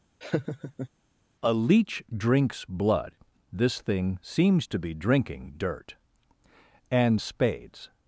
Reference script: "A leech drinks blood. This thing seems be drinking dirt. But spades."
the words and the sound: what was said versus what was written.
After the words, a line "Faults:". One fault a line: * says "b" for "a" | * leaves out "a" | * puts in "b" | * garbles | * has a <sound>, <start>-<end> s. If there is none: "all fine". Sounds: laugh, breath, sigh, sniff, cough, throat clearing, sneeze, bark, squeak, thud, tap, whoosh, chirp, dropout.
"A leech drinks blood. This thing seems to be drinking dirt. And spades."
Faults:
* has a laugh, 0.2-0.9 s
* puts in "to"
* says "And" for "But"